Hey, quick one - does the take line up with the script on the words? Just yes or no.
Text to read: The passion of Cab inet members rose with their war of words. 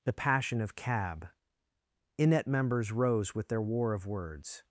yes